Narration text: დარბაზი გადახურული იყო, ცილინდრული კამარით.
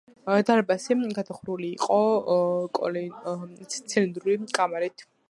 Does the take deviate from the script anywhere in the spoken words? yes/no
no